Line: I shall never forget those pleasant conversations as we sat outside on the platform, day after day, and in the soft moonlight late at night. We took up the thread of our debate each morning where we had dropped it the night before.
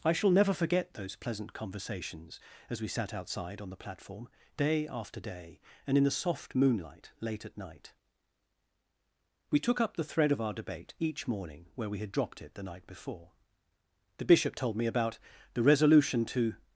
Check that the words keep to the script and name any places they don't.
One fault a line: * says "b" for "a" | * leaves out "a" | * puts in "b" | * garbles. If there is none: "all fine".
* puts in "The Bishop told me about the resolution to"